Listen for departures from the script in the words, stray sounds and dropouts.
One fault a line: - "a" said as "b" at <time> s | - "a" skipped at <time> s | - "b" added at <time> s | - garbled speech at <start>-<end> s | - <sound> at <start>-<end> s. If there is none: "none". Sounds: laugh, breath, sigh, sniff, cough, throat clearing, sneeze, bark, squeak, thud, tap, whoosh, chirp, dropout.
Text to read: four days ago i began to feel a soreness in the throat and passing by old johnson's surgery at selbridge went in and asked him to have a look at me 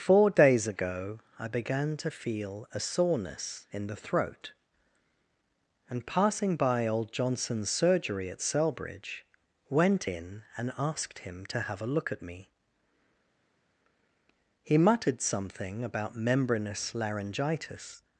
- "he muttered something about membranous laryngitis" added at 14.6 s